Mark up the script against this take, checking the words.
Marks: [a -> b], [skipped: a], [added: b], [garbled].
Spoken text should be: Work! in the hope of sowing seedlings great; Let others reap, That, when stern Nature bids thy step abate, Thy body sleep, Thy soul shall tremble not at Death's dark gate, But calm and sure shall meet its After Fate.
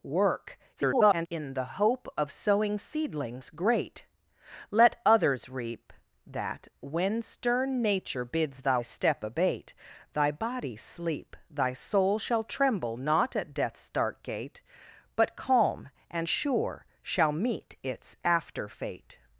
Work! [garbled] in the hope of sowing seedlings great; Let others reap, That, when stern Nature bids thy step abate, Thy body sleep, Thy soul shall tremble not at Death's dark gate, But calm and sure shall meet its After Fate.